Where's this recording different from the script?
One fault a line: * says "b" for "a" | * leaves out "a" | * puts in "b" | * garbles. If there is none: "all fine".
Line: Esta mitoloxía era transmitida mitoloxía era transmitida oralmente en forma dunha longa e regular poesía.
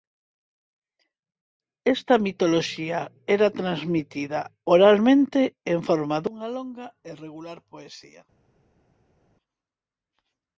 * leaves out "mitoloxía era transmitida"